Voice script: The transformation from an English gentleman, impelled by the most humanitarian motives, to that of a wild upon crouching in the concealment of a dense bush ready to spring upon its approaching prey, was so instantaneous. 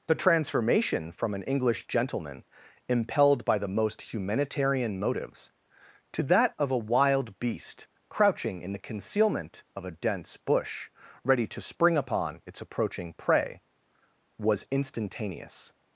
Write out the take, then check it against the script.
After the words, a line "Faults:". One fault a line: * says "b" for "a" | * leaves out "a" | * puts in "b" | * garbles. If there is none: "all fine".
The transformation from an English gentleman, impelled by the most humanitarian motives, to that of a wild beast crouching in the concealment of a dense bush ready to spring upon its approaching prey, was instantaneous.
Faults:
* says "beast" for "upon"
* leaves out "so"